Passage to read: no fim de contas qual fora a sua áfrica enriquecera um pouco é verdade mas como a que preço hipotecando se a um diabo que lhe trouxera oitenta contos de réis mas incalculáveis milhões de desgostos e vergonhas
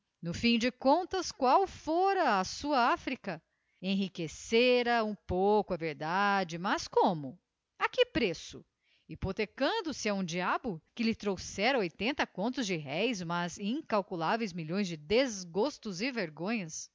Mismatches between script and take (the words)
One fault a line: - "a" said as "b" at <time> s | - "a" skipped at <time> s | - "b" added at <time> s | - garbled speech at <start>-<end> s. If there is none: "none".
none